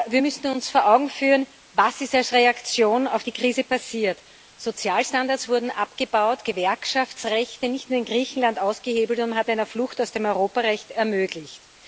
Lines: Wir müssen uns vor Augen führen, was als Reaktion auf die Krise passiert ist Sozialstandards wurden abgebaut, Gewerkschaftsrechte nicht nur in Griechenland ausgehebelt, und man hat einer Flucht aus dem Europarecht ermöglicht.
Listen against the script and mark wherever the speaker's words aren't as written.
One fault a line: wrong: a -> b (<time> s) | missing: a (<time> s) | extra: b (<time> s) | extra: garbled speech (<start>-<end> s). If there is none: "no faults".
no faults